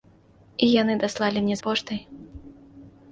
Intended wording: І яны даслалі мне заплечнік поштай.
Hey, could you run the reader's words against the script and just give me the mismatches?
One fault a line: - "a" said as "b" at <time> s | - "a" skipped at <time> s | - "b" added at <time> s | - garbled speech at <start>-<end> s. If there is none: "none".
- "заплечнік" skipped at 1.6 s